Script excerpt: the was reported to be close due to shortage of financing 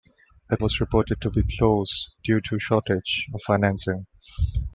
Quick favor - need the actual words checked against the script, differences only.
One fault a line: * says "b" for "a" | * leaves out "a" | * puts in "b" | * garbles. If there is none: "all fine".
all fine